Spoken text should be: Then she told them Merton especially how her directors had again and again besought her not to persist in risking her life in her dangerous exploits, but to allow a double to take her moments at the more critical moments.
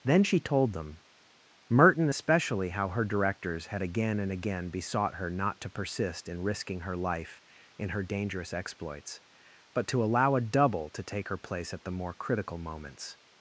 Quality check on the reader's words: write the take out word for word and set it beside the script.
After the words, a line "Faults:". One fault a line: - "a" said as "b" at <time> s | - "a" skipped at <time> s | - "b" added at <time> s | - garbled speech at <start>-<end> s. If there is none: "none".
Then she told them Merton especially how her directors had again and again besought her not to persist in risking her life in her dangerous exploits, but to allow a double to take her place at the more critical moments.
Faults:
- "moments" said as "place" at 11.4 s